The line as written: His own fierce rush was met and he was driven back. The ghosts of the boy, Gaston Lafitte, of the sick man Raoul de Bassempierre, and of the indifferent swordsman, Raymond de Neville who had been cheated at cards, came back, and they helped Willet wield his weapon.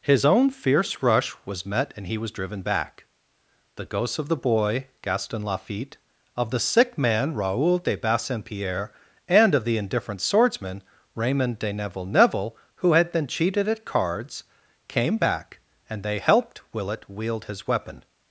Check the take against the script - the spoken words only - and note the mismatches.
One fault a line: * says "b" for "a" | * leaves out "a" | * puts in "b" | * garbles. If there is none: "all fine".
* puts in "Neville"